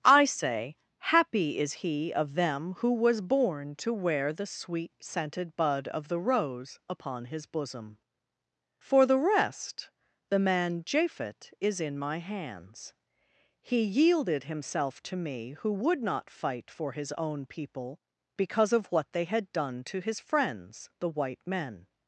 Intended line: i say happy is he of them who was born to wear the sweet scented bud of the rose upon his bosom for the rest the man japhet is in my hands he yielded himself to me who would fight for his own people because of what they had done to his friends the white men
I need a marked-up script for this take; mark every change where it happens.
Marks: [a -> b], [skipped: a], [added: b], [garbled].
i say happy is he of them who was born to wear the sweet scented bud of the rose upon his bosom for the rest the man japhet is in my hands he yielded himself to me who would [added: not] fight for his own people because of what they had done to his friends the white men